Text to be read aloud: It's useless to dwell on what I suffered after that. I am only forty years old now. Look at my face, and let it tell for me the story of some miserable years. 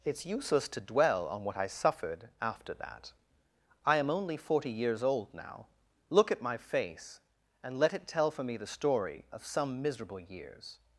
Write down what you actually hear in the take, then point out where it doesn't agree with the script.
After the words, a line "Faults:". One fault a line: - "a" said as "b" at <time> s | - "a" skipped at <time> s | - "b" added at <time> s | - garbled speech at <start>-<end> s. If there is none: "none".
It's useless to dwell on what I suffered after that. I am only forty years old now. Look at my face, and let it tell for me the story of some miserable years.
Faults:
none